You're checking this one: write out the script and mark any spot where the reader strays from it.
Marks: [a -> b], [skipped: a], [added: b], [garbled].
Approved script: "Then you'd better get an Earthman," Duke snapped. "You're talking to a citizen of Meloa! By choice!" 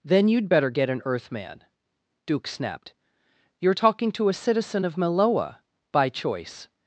"Then you'd better get an Earthman," Duke snapped. "You're talking to a citizen of Meloa! By choice!"